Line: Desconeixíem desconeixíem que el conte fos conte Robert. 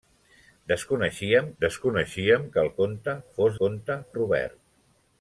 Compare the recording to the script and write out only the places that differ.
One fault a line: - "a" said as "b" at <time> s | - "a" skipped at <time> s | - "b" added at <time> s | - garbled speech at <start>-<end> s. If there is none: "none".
none